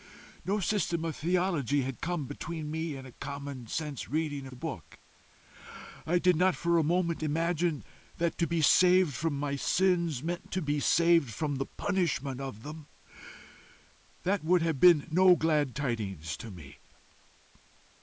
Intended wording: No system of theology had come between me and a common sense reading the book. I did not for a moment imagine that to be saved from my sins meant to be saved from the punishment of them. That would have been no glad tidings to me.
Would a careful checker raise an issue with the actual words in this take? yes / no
no